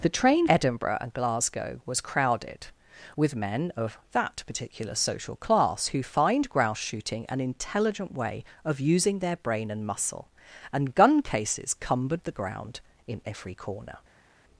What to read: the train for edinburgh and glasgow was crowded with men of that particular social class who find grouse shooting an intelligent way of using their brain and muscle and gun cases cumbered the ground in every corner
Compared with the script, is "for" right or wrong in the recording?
wrong